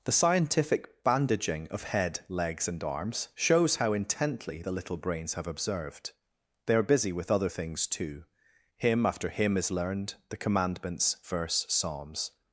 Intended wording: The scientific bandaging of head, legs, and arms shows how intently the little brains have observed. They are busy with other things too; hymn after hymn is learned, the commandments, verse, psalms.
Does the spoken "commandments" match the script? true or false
true